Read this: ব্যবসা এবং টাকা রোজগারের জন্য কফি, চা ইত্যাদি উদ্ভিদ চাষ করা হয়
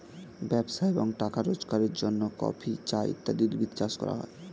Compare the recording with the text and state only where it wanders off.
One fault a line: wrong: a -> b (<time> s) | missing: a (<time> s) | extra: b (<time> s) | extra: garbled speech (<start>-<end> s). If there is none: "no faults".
no faults